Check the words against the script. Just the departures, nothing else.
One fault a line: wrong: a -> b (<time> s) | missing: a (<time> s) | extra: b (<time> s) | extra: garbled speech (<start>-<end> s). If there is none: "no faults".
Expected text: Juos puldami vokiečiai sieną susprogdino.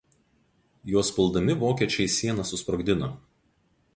no faults